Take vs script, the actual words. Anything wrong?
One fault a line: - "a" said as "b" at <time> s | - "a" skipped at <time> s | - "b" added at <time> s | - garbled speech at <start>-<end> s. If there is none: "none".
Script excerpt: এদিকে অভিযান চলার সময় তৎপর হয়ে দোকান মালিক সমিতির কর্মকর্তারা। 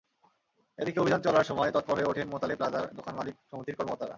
- "ওঠেন মোতালেব প্লাজার" added at 2.1 s